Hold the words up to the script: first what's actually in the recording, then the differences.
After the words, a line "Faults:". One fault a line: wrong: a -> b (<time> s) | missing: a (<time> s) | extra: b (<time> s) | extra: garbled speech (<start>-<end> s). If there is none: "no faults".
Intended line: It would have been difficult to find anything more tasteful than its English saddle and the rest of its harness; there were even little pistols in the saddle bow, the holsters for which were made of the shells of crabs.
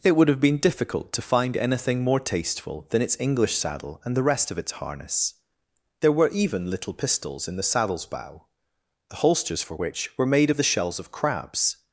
It would have been difficult to find anything more tasteful than its English saddle and the rest of its harness; there were even little pistols in the saddles bow, the holsters for which were made of the shells of crabs.
Faults:
wrong: saddle -> saddles (7.6 s)